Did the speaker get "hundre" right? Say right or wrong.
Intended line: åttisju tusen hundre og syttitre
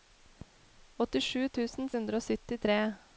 right